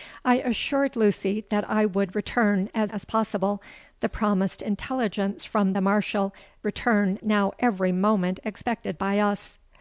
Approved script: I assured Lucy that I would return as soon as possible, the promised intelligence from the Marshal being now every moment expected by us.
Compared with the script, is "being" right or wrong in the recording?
wrong